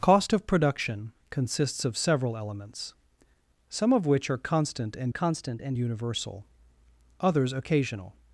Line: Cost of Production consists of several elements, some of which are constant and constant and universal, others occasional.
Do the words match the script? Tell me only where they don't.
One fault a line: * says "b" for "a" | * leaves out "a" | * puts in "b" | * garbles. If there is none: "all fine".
all fine